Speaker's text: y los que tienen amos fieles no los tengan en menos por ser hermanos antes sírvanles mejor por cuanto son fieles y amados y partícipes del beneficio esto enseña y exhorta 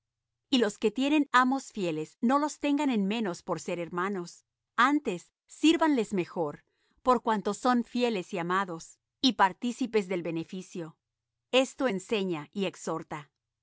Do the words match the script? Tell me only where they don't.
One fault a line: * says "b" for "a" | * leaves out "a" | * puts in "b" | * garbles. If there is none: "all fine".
all fine